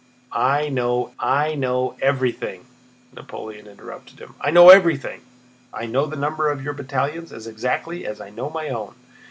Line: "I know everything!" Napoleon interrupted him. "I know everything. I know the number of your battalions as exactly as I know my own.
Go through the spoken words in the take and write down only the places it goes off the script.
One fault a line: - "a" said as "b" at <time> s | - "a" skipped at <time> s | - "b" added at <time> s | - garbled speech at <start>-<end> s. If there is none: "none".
- "I know" added at 1.2 s